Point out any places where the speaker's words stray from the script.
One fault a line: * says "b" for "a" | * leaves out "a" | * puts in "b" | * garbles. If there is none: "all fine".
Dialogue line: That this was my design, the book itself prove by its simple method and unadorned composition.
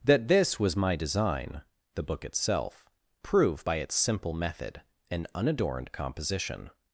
all fine